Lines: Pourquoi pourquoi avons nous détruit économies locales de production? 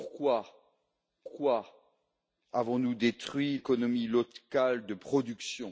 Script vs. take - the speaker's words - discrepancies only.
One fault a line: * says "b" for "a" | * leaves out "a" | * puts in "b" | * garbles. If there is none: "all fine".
all fine